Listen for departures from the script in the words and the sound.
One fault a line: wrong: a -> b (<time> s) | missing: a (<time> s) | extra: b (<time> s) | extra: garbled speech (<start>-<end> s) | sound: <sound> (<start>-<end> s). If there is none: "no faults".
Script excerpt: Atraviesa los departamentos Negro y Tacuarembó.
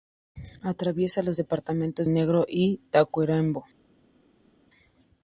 no faults